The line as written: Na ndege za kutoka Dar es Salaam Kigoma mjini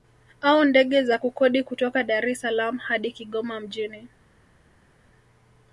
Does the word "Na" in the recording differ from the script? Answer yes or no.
yes